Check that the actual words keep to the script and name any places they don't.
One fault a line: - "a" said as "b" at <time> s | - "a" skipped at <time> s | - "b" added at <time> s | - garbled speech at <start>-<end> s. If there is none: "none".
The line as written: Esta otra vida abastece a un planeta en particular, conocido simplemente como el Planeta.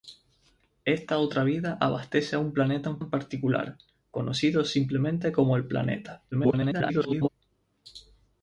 - "en" added at 3.0 s
- garbled speech at 6.3-7.3 s